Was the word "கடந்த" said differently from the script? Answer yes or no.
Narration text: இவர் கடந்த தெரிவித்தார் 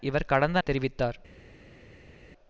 no